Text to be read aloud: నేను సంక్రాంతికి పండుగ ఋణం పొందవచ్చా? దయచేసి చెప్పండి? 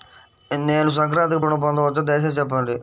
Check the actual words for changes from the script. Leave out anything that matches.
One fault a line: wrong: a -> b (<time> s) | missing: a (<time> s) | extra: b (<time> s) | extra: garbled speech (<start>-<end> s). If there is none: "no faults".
missing: పండుగ (1.4 s)